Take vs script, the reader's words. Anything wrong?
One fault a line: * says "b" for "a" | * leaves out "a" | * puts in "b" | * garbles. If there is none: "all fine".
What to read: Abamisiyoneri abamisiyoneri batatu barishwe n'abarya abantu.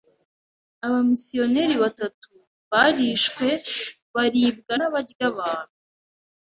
* leaves out "abamisiyoneri"
* puts in "baribwa"